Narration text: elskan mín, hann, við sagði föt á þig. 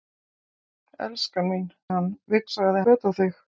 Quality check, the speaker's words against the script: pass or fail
pass